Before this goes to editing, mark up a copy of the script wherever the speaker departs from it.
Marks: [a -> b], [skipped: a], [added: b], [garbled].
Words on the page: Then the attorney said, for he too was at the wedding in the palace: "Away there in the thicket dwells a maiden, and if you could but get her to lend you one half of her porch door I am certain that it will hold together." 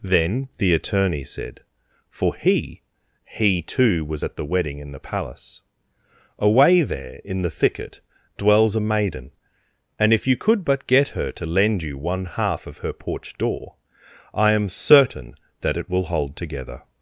Then the attorney said, for he [added: he] too was at the wedding in the palace: "Away there in the thicket dwells a maiden, and if you could but get her to lend you one half of her porch door I am certain that it will hold together."